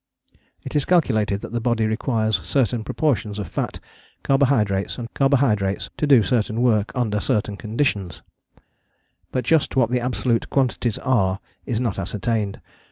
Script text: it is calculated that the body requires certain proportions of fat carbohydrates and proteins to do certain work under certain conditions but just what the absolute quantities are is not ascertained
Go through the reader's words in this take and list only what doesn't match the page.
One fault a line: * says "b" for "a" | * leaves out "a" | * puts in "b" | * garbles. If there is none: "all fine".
* says "carbohydrates" for "proteins"